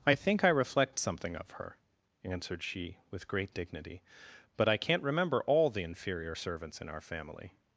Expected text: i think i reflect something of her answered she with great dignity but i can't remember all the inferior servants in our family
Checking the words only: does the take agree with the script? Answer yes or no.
yes